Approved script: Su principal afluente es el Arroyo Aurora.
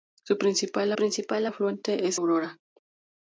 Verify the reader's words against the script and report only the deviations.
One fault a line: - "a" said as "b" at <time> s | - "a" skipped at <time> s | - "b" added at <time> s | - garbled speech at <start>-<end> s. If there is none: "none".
- "principal" added at 0.9 s
- "el Arroyo" skipped at 2.2 s